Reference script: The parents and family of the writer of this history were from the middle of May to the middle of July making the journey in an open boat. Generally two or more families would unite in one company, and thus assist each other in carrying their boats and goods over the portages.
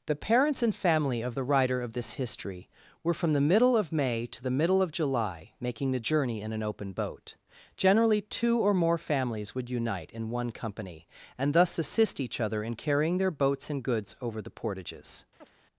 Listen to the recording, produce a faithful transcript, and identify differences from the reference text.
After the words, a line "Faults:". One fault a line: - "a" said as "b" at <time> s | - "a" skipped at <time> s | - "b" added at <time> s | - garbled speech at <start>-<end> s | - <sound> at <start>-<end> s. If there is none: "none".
The parents and family of the writer of this history were from the middle of May to the middle of July making the journey in an open boat. Generally two or more families would unite in one company, and thus assist each other in carrying their boats and goods over the portages.
Faults:
- chirp at 15.4-15.5 s